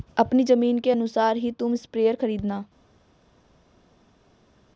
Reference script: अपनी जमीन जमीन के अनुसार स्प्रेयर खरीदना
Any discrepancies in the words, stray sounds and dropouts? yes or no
yes